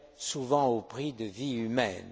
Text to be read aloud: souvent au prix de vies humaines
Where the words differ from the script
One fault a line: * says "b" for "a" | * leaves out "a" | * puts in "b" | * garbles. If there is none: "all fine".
all fine